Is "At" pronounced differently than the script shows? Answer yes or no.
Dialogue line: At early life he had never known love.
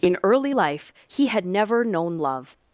yes